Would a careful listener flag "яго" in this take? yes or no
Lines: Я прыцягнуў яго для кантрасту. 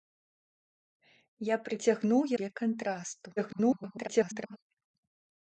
yes